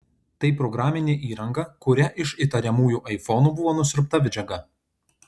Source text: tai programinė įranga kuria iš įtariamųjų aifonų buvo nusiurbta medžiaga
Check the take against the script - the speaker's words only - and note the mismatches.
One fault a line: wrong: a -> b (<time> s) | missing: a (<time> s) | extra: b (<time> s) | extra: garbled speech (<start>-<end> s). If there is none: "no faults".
no faults